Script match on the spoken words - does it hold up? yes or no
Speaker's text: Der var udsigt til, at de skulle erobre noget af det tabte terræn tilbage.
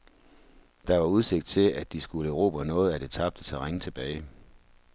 yes